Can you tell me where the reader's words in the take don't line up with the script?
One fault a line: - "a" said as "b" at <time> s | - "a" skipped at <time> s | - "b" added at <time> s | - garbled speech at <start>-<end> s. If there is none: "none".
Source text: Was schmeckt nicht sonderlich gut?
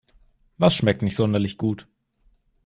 none